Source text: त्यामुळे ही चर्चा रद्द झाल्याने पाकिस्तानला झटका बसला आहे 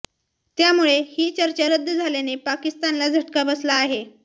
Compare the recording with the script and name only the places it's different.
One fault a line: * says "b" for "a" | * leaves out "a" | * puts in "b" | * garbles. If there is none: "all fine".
all fine